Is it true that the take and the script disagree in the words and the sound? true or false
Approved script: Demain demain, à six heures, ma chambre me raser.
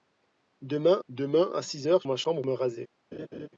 true